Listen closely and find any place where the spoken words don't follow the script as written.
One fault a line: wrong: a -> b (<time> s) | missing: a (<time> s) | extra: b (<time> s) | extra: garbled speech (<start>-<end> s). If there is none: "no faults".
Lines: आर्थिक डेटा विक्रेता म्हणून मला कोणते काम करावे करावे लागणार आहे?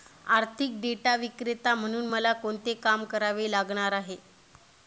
missing: करावे (3.5 s)